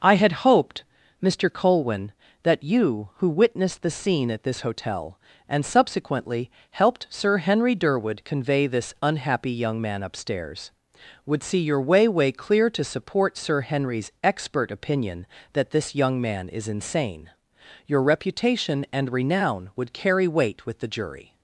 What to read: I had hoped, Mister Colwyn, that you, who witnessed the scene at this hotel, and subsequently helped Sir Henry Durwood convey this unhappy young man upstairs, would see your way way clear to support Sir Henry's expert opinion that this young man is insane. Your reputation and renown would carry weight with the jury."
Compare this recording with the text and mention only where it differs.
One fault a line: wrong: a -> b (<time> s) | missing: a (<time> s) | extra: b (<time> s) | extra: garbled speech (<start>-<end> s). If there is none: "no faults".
no faults